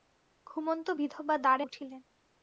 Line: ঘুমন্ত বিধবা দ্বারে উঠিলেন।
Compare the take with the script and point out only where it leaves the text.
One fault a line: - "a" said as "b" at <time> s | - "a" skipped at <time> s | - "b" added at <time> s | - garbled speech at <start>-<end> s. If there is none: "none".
none